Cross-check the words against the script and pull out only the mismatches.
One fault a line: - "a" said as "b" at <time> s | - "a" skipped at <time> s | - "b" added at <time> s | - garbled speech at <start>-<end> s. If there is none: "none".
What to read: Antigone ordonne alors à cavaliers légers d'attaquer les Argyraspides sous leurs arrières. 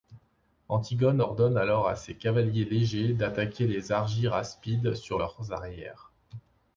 - "ses" added at 2.0 s
- "sous" said as "sur" at 4.9 s